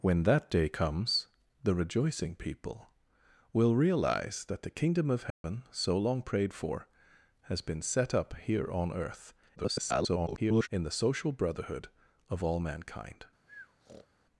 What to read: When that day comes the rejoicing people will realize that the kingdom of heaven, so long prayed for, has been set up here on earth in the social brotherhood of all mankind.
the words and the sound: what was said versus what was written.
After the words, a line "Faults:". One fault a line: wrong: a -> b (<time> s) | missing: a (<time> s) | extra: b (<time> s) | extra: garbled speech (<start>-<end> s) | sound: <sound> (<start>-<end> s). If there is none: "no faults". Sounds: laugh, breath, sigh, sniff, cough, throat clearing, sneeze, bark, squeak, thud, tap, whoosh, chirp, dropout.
When that day comes the rejoicing people will realize that the kingdom of heaven, so long prayed for, has been set up here on earth [garbled] in the social brotherhood of all mankind.
Faults:
sound: dropout (5.3-5.4 s)
extra: garbled speech (9.6-10.7 s)
sound: breath (13.5-14.1 s)